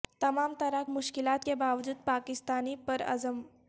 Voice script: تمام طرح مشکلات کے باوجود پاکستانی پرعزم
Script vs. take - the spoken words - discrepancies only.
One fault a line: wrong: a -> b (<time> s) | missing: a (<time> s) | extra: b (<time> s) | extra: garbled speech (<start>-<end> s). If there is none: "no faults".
no faults